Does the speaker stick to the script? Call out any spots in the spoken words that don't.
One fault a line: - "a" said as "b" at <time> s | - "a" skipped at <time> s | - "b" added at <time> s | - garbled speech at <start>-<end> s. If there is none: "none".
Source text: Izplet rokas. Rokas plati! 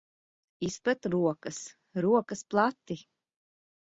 none